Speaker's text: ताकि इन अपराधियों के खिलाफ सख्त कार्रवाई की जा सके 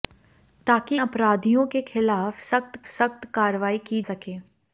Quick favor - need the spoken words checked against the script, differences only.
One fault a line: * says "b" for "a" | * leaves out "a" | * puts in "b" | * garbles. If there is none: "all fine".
* leaves out "इन"
* puts in "सख्त"
* leaves out "जा"